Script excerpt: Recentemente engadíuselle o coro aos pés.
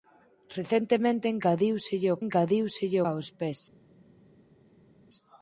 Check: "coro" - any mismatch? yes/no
yes